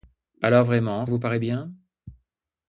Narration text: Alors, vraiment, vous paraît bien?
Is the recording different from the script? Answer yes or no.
no